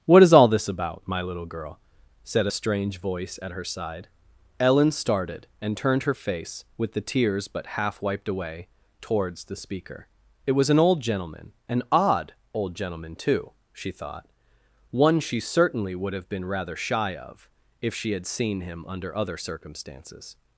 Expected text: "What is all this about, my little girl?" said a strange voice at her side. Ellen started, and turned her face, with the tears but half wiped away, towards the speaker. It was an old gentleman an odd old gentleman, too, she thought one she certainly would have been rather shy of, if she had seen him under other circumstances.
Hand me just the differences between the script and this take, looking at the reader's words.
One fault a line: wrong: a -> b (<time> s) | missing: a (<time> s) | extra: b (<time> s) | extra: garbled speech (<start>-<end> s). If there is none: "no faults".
no faults